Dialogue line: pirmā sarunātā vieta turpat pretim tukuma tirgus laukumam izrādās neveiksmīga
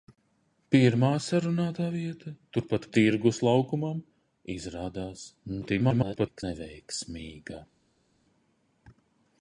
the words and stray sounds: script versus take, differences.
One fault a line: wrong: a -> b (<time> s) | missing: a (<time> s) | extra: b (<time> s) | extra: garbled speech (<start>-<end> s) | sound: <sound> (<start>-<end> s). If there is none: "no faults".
missing: pretim tukuma (2.9 s)
extra: garbled speech (5.6-6.4 s)